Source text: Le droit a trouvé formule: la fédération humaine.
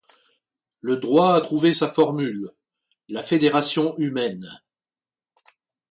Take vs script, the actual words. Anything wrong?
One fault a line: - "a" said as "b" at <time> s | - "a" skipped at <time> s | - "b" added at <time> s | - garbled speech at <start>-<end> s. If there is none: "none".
- "sa" added at 1.7 s